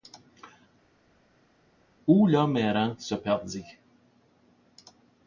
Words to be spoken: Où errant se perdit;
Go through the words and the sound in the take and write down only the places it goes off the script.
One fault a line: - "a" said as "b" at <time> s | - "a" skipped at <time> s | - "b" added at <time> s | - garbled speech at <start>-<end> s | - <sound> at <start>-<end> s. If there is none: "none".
- "l'homme" added at 2.3 s